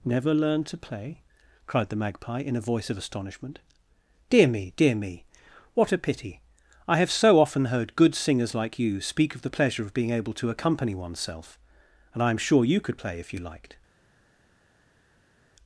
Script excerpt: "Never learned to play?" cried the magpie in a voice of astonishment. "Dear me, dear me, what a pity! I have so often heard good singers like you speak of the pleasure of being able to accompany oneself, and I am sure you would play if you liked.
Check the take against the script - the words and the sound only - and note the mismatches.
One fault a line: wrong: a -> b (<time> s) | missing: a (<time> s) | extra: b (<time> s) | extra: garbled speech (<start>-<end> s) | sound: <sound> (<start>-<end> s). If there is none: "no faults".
wrong: would -> could (12.8 s)